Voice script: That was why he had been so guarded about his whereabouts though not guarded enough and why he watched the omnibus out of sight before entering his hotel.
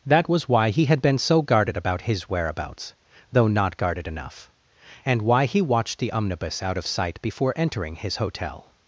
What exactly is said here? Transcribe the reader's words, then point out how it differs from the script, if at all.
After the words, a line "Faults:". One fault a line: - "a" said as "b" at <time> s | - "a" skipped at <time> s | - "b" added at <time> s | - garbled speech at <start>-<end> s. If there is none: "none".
That was why he had been so guarded about his whereabouts though not guarded enough and why he watched the omnibus out of sight before entering his hotel.
Faults:
none